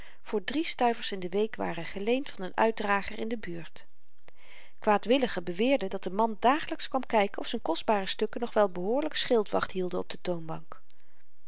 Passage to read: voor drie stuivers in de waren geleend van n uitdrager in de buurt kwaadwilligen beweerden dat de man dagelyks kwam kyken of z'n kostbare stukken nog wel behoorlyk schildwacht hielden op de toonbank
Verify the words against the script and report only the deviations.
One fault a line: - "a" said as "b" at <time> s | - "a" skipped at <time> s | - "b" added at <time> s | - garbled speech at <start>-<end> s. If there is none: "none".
- "week" added at 1.3 s